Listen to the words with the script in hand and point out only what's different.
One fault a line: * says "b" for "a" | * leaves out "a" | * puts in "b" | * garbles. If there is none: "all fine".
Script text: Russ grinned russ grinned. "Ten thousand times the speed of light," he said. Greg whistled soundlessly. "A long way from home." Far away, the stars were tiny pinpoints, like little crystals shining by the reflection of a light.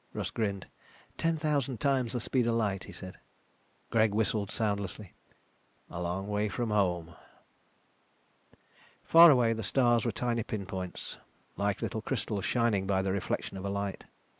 * leaves out "russ grinned"